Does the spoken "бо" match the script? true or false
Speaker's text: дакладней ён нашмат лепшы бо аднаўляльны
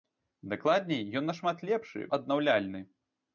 false